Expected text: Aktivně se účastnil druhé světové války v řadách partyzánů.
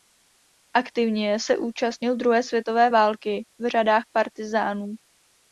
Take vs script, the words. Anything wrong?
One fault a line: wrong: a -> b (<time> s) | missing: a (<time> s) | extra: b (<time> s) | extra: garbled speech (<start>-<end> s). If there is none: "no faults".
no faults